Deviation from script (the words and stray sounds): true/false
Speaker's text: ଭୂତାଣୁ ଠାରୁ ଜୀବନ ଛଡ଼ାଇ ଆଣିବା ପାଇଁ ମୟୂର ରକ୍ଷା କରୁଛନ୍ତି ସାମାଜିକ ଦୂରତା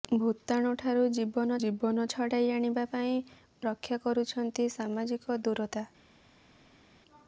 true